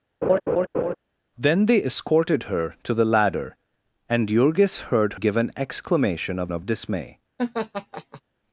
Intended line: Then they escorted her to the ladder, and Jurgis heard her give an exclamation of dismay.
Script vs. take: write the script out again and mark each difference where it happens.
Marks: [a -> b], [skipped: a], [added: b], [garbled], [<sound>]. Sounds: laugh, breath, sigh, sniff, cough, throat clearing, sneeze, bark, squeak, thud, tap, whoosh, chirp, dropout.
[laugh] Then they escorted her to the ladder, and Jurgis heard [skipped: her] give an exclamation of [added: of] dismay. [laugh]